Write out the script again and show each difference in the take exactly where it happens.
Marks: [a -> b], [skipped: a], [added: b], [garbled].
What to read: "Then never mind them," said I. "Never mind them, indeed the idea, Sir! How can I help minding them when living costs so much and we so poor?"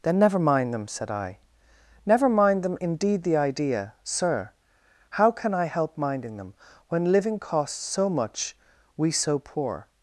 "Then never mind them," said I. "Never mind them, indeed the idea, Sir! How can I help minding them when living costs so much [skipped: and] we so poor?"